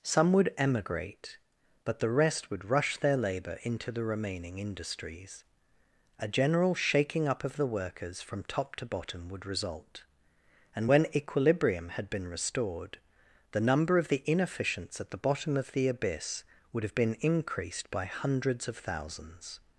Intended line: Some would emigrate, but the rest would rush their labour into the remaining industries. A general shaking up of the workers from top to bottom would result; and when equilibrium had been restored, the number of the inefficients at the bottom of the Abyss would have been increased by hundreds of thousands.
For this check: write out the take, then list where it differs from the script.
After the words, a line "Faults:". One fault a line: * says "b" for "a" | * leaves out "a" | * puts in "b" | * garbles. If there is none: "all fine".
Some would emigrate, but the rest would rush their labour into the remaining industries. A general shaking up of the workers from top to bottom would result; and when equilibrium had been restored, the number of the inefficients at the bottom of the Abyss would have been increased by hundreds of thousands.
Faults:
all fine